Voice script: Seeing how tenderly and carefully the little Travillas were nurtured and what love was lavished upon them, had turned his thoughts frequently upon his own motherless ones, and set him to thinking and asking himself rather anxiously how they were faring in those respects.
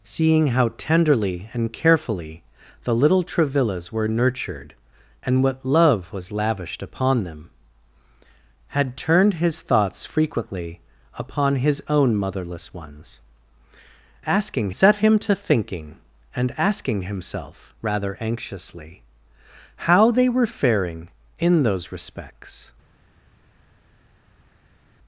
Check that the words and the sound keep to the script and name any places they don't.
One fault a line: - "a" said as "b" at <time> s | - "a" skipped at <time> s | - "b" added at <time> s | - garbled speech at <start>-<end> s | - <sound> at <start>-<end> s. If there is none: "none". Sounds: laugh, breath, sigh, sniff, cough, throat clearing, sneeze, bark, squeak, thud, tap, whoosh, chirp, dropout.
- "and" said as "asking" at 14.2 s